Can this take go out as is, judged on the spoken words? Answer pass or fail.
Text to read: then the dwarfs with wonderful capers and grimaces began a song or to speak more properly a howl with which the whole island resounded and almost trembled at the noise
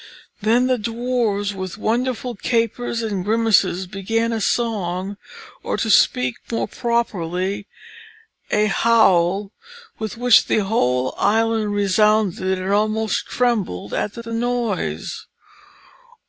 fail